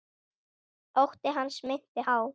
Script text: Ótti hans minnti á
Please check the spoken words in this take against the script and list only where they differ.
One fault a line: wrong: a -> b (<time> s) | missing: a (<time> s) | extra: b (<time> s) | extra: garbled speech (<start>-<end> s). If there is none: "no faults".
no faults